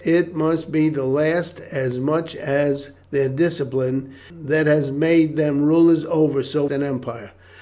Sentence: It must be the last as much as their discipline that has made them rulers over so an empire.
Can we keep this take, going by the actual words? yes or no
yes